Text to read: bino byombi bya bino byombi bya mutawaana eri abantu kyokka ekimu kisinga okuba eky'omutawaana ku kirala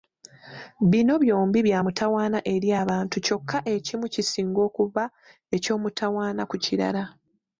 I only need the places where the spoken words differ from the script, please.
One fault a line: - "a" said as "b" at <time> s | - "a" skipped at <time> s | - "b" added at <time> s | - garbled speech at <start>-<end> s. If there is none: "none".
- "bino byombi bya" skipped at 1.8 s